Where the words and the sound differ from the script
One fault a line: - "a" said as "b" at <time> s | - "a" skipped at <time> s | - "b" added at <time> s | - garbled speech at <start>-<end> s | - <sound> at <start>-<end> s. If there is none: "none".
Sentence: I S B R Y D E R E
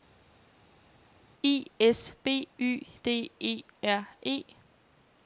- "R" skipped at 2.5 s